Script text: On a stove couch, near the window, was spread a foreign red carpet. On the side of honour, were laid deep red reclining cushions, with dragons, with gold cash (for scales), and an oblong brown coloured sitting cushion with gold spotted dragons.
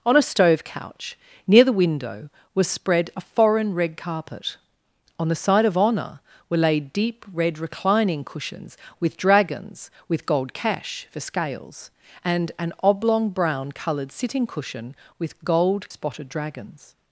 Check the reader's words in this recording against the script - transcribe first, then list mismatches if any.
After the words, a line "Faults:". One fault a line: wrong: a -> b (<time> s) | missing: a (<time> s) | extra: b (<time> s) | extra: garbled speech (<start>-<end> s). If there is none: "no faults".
On a stove couch, near the window, was spread a foreign red carpet. On the side of honour, were laid deep red reclining cushions, with dragons, with gold cash (for scales), and an oblong brown coloured sitting cushion with gold spotted dragons.
Faults:
no faults